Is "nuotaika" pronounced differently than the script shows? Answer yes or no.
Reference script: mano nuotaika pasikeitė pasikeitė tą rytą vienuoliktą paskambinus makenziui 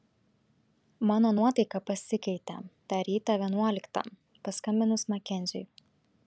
no